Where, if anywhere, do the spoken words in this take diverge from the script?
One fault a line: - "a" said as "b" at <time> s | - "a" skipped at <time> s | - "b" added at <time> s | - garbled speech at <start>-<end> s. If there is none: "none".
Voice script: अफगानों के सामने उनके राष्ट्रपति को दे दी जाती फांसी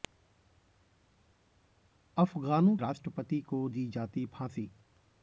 - "के सामने उनके" skipped at 2.8 s
- "दे" skipped at 3.7 s